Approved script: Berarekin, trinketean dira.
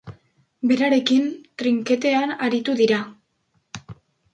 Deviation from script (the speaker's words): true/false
true